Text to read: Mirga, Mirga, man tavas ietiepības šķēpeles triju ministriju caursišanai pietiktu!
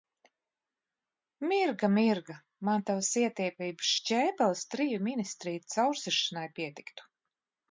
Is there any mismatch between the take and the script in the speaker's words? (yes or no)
no